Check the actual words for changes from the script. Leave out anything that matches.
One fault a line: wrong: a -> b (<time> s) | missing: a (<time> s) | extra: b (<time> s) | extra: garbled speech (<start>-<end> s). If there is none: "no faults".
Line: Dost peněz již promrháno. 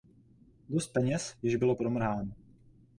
extra: bylo (1.5 s)